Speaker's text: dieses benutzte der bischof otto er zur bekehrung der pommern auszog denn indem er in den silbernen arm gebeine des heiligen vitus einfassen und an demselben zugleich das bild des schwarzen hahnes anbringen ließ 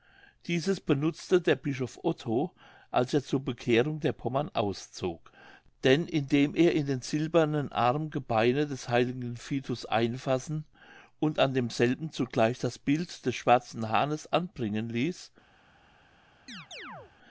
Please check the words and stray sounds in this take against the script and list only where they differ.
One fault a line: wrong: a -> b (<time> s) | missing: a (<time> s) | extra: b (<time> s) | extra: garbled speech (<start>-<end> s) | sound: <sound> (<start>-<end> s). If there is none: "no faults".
extra: als (2.9 s)
sound: chirp (16.5-17.1 s)